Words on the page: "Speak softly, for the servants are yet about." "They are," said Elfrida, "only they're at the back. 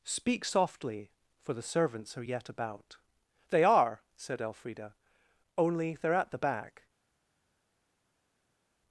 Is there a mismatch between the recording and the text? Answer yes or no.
no